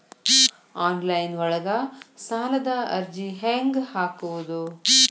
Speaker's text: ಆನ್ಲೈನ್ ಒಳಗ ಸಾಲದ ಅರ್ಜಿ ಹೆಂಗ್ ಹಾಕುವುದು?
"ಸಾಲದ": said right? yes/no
yes